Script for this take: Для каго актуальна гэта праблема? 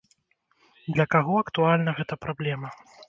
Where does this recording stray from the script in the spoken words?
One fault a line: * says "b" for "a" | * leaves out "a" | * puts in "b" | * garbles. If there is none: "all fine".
all fine